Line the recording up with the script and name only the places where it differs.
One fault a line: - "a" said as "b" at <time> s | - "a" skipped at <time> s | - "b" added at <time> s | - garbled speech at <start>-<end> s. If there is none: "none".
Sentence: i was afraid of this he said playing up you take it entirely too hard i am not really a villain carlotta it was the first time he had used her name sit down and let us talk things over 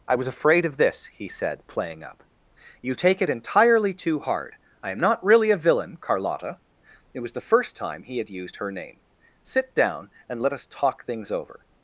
none